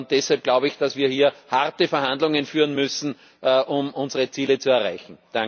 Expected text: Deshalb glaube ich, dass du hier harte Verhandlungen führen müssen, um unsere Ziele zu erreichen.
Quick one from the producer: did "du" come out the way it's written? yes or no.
no